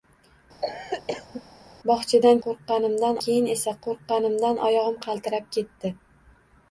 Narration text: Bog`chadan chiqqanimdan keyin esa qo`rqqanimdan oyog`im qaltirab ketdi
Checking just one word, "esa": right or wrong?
right